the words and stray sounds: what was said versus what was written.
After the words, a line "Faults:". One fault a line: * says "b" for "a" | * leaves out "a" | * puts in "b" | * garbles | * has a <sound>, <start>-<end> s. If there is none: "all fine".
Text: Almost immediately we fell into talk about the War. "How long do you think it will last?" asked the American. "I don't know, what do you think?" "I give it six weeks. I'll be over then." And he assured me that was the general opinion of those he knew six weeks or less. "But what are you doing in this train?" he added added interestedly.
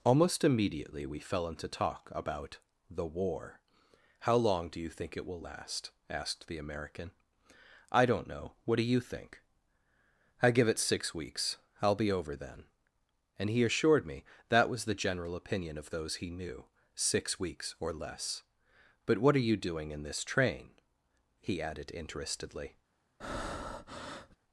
Almost immediately we fell into talk about the War. "How long do you think it will last?" asked the American. "I don't know, what do you think?" "I give it six weeks. I'll be over then." And he assured me that was the general opinion of those he knew six weeks or less. "But what are you doing in this train?" he added interestedly.
Faults:
* leaves out "added"
* has a breath, 23.2-24.4 s